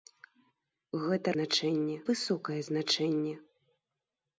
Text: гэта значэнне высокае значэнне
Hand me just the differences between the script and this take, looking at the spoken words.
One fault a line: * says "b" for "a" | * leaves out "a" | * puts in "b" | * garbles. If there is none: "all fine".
all fine